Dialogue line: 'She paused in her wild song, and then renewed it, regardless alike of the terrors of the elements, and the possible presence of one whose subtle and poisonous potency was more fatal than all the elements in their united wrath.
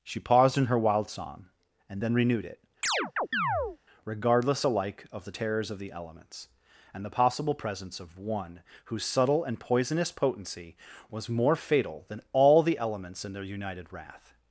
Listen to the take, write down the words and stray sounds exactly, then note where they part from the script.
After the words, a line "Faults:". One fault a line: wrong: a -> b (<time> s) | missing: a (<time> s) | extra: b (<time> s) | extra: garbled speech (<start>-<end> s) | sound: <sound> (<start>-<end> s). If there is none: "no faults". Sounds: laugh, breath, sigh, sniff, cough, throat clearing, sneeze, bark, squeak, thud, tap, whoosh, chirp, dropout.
'She paused in her wild song, and then renewed it, regardless alike of the terrors of the elements, and the possible presence of one whose subtle and poisonous potency was more fatal than all the elements in their united wrath.
Faults:
sound: chirp (2.8-3.8 s)